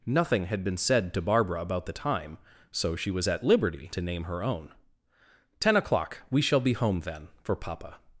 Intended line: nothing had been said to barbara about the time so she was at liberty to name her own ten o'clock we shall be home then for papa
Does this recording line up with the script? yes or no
yes